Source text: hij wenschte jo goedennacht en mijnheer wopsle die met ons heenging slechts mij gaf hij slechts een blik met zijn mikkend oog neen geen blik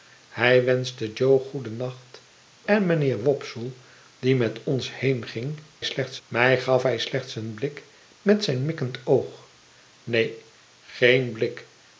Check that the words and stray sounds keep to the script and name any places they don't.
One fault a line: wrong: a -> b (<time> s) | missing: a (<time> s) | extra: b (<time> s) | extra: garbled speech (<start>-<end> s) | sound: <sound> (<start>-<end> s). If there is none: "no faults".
no faults